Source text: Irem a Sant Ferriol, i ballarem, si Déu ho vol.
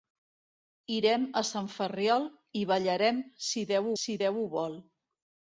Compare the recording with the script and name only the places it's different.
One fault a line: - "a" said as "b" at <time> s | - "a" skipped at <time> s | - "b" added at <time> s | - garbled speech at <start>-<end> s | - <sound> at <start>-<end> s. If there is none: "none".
- "si Déu" added at 4.0 s